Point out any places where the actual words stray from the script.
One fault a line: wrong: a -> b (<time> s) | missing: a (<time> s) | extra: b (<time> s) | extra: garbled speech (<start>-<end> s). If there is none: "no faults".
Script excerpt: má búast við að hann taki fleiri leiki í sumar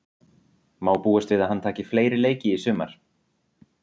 no faults